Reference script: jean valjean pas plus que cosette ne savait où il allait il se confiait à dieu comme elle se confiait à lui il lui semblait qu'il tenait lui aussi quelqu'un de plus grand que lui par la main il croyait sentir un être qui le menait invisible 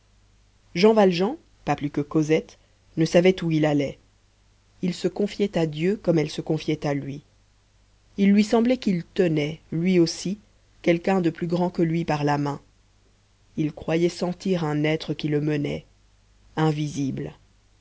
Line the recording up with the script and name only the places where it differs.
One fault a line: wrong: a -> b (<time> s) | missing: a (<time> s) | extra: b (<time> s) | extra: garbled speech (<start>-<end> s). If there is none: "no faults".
no faults